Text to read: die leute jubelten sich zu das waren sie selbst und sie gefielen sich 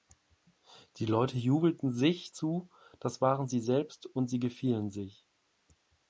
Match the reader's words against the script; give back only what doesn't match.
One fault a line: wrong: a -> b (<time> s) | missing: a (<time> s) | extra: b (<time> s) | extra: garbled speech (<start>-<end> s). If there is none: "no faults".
no faults